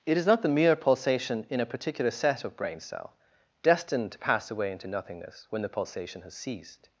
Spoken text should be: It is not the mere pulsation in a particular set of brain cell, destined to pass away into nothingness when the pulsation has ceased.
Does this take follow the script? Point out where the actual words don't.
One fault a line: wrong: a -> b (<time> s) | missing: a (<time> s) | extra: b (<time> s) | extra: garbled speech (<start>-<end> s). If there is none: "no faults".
no faults